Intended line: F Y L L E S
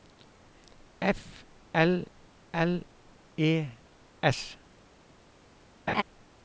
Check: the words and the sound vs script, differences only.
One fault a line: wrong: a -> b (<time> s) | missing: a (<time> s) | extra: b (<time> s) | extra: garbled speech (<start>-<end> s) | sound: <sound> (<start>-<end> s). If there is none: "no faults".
missing: Y (1.4 s)
sound: laugh (5.9-6.0 s)